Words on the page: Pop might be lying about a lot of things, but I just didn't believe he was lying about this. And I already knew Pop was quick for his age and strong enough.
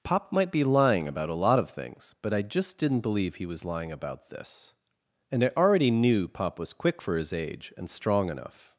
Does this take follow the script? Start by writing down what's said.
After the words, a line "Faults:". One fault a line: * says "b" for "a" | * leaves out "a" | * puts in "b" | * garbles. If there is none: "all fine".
Pop might be lying about a lot of things, but I just didn't believe he was lying about this. And I already knew Pop was quick for his age and strong enough.
Faults:
all fine